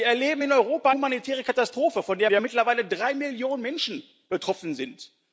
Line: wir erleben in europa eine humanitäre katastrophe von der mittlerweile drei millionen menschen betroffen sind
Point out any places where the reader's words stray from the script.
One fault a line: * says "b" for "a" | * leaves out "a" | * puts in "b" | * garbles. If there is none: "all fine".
* leaves out "eine"
* puts in "der"